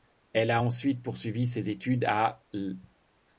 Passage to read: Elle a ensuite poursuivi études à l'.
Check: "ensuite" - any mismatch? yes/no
no